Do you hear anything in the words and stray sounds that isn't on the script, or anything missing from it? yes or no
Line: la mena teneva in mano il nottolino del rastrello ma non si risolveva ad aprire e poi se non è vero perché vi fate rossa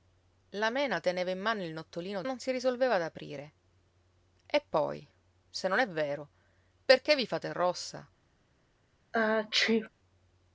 yes